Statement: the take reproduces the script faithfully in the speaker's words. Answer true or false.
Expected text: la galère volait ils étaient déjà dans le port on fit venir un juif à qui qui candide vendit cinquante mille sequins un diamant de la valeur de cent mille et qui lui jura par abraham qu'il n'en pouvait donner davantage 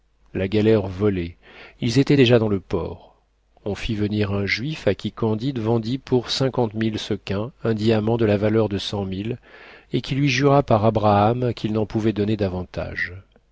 false